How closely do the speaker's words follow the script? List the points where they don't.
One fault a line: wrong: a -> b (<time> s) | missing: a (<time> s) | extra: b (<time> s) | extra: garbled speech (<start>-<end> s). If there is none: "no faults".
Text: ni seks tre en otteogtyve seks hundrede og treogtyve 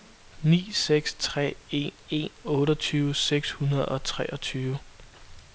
extra: en (2.1 s)